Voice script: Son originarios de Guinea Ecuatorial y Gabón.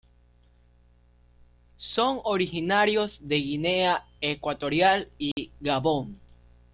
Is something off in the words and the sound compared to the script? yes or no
yes